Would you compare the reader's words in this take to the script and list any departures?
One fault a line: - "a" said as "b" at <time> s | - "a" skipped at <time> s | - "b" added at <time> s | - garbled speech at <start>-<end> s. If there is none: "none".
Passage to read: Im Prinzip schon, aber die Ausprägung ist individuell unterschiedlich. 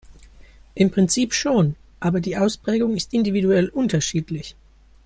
none